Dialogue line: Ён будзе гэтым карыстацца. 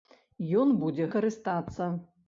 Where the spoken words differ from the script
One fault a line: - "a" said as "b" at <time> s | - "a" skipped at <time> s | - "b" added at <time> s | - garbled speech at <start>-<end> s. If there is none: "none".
- "гэтым" skipped at 1.1 s